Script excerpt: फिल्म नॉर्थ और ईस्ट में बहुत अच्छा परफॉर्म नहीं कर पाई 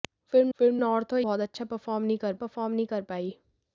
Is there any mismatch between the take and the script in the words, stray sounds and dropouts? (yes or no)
yes